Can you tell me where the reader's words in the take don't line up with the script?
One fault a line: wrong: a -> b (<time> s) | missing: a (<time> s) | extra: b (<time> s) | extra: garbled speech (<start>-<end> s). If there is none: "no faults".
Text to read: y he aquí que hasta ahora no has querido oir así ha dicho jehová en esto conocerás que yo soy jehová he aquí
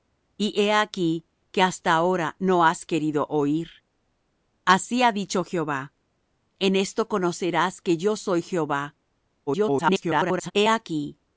extra: garbled speech (9.5-10.5 s)